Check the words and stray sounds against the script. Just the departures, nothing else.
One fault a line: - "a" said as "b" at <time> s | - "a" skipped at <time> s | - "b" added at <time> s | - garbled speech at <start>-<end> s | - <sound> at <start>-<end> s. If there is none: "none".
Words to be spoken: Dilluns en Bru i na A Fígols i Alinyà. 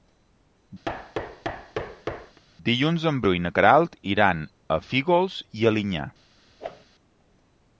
- thud at 0.8-2.4 s
- "Queralt iran" added at 3.6 s
- whoosh at 6.6-6.9 s